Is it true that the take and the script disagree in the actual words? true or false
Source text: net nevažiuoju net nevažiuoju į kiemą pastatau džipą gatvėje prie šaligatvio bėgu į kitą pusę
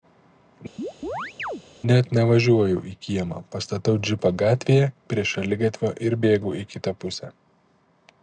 true